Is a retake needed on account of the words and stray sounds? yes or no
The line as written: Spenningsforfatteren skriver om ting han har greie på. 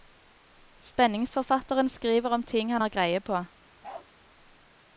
yes